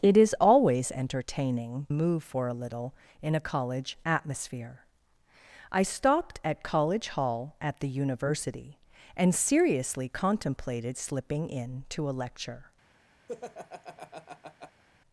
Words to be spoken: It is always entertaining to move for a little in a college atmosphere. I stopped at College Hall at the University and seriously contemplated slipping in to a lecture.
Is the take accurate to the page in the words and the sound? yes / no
no